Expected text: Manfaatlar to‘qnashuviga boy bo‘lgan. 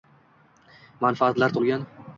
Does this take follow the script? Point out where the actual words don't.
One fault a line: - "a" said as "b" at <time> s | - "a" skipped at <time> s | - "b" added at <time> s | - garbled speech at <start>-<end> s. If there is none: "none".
- "to‘qnashuviga boy" skipped at 1.6 s